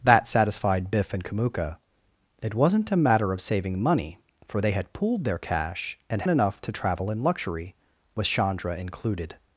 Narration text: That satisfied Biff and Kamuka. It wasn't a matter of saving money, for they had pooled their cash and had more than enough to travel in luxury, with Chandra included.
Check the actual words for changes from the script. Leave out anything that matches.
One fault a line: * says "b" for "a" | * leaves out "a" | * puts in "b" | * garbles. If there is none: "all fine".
* leaves out "had more than"